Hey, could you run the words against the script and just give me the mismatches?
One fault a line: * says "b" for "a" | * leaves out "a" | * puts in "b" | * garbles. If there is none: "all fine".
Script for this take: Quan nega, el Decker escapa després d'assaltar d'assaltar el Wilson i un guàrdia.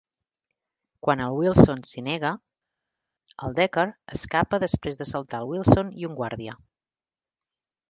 * puts in "el Wilson s'hi"
* leaves out "d'assaltar"